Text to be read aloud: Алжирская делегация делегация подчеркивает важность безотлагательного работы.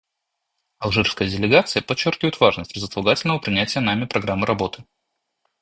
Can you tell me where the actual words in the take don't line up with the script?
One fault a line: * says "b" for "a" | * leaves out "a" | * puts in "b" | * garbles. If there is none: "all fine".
* leaves out "делегация"
* puts in "принятия нами программы"